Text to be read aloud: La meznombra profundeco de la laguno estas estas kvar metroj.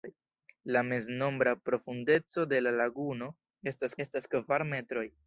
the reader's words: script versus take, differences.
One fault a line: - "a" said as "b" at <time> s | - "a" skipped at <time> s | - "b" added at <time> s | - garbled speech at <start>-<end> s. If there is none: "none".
none